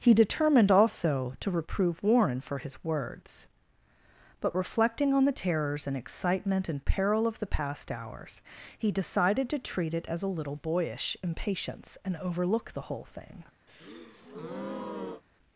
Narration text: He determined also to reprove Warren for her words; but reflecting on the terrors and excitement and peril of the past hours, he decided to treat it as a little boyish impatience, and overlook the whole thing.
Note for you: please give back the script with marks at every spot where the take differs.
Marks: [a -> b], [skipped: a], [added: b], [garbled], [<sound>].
He determined also to reprove Warren for [her -> his] words; but reflecting on the terrors and excitement and peril of the past hours, he decided to treat it as a little boyish impatience, and overlook the whole thing. [breath]